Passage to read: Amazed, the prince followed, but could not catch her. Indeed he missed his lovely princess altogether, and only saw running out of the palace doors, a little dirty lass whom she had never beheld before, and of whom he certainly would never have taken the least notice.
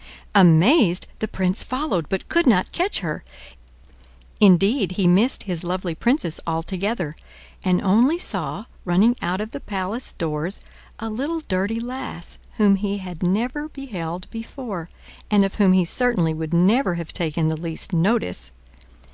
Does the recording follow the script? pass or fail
fail